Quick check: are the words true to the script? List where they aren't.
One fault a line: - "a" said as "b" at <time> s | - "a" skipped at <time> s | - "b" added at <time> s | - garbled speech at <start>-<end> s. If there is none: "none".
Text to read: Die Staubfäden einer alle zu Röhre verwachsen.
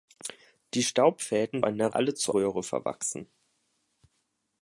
none